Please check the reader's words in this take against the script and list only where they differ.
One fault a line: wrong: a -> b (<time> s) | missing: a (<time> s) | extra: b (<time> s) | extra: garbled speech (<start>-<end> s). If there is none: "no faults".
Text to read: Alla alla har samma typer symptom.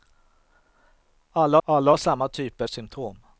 no faults